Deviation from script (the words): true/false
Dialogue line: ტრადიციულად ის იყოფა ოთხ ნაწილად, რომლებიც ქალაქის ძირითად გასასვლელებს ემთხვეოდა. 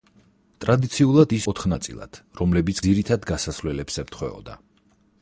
true